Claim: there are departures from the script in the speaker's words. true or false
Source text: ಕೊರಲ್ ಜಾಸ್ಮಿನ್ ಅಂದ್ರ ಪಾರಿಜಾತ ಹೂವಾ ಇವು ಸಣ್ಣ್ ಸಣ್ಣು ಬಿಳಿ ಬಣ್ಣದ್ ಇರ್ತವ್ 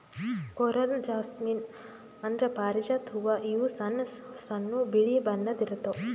false